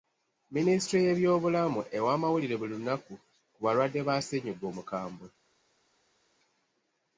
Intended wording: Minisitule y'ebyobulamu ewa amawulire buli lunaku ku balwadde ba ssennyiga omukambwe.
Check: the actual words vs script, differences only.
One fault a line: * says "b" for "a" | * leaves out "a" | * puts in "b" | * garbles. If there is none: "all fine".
all fine